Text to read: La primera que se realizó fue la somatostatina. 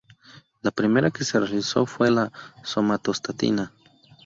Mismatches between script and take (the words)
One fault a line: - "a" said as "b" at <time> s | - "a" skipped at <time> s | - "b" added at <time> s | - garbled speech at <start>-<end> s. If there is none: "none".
none